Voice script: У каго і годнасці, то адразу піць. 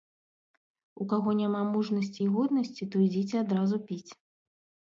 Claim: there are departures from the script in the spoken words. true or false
true